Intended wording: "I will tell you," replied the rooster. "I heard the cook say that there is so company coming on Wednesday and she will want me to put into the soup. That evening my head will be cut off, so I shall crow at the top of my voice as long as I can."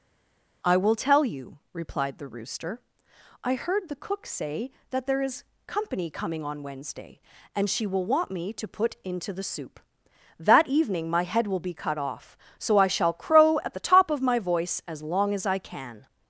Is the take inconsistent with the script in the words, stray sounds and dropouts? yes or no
yes